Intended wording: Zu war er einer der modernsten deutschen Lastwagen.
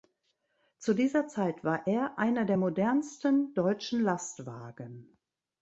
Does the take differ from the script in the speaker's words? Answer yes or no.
yes